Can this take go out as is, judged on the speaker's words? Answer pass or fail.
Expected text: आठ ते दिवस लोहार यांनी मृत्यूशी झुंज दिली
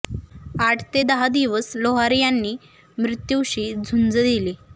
fail